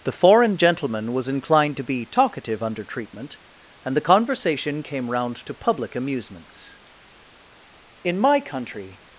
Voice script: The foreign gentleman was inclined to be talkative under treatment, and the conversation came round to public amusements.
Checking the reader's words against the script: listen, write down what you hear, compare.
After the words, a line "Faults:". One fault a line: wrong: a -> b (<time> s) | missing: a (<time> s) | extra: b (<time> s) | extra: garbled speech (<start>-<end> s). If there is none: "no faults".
The foreign gentleman was inclined to be talkative under treatment, and the conversation came round to public amusements. "In my country
Faults:
extra: In my country (8.0 s)